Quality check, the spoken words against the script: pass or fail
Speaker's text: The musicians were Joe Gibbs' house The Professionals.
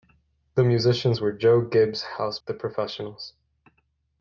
pass